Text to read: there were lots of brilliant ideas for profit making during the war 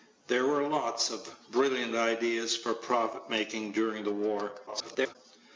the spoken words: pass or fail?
fail